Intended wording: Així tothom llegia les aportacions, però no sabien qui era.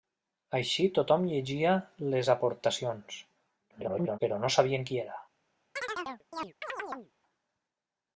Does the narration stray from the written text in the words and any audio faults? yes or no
yes